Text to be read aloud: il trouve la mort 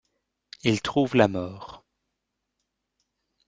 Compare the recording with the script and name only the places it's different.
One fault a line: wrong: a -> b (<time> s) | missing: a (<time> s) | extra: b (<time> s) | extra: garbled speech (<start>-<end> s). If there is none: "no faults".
no faults